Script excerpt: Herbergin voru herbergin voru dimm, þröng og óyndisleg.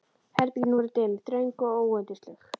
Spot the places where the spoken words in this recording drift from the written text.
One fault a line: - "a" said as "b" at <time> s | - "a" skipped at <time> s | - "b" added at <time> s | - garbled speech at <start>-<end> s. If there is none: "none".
- "herbergin voru" skipped at 0.9 s